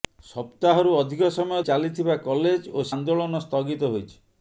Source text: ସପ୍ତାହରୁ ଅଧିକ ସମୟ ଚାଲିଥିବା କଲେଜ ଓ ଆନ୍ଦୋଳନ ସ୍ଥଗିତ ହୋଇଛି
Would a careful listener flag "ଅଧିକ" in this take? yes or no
no